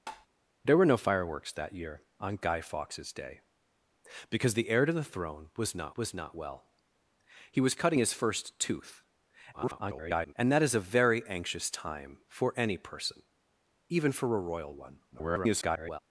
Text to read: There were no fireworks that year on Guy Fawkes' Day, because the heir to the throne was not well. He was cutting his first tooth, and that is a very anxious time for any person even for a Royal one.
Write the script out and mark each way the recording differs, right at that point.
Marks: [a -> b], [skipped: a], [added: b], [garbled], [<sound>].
[tap] There were no fireworks that year on Guy Fawkes' Day, because the heir to the throne was not [added: was not] well. He was cutting his first tooth, [garbled] and that is a very anxious time for any person even for a Royal one. [garbled]